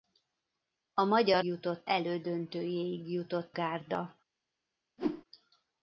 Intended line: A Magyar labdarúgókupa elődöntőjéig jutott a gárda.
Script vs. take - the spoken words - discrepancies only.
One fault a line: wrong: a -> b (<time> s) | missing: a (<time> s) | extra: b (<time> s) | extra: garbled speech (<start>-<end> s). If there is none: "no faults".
wrong: labdarúgókupa -> jutott (1.4 s)
missing: a (3.6 s)